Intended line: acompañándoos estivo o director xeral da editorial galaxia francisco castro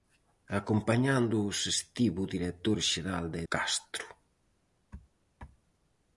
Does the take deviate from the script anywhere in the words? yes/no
yes